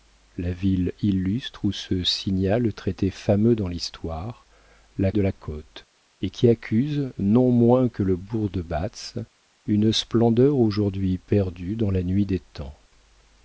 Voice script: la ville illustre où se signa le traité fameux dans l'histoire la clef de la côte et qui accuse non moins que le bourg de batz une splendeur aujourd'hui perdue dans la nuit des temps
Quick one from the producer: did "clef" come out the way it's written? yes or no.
no